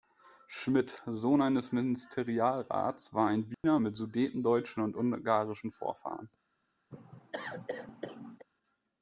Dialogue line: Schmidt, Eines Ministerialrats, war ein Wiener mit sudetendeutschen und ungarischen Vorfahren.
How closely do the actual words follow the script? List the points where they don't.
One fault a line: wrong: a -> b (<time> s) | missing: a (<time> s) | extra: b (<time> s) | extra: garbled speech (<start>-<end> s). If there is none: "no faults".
extra: Sohn (1.1 s)